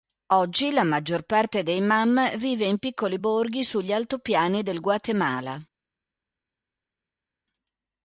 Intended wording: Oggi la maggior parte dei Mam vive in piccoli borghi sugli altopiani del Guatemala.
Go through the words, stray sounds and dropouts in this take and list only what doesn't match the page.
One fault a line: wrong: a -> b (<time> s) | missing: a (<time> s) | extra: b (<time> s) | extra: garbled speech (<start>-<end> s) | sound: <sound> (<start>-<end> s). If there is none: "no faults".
no faults